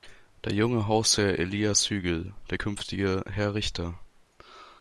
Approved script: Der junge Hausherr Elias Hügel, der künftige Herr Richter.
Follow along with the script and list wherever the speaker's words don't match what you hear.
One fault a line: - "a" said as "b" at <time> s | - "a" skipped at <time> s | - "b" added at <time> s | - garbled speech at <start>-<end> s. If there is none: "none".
none